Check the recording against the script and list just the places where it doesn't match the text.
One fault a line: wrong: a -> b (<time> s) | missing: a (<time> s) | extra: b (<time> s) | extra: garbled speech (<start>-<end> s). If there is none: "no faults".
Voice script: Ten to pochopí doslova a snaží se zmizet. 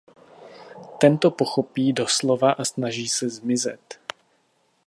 no faults